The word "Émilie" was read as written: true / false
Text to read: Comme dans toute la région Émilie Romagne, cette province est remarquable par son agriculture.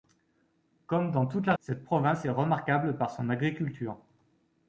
false